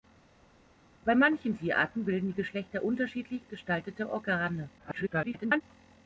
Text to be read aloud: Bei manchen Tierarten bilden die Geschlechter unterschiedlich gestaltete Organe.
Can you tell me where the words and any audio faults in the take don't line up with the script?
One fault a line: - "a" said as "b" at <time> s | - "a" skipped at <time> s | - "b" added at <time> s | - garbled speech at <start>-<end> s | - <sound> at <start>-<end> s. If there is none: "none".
- garbled speech at 4.8-5.6 s